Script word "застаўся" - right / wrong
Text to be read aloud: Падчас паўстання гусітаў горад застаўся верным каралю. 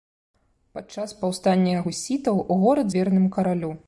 wrong